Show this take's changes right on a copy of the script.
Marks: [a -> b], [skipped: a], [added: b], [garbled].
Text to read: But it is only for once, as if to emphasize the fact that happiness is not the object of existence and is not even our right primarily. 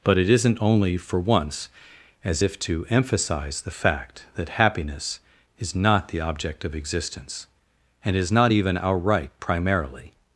But it [is -> isn't] only for once, as if to emphasize the fact that happiness is not the object of existence and is not even our right primarily.